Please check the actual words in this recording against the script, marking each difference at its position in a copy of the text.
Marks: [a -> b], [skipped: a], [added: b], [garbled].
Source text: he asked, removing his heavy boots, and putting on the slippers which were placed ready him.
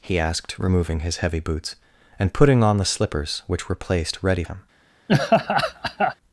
he asked, removing his heavy boots, and putting on the slippers which were placed ready him.